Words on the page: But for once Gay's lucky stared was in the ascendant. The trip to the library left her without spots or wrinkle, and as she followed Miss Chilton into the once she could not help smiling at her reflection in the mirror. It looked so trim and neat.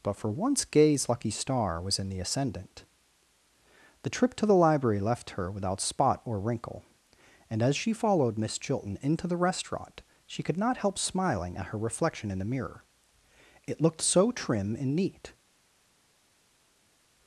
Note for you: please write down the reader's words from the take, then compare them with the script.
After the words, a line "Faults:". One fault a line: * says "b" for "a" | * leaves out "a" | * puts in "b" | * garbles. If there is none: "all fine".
But for once Gay's lucky star was in the ascendant. The trip to the library left her without spot or wrinkle, and as she followed Miss Chilton into the restaurant she could not help smiling at her reflection in the mirror. It looked so trim and neat.
Faults:
* says "star" for "stared"
* says "spot" for "spots"
* says "restaurant" for "once"